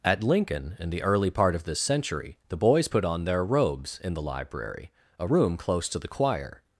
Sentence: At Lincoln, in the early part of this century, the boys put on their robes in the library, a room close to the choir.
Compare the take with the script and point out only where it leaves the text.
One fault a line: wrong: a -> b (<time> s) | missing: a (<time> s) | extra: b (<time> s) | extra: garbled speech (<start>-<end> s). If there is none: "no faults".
no faults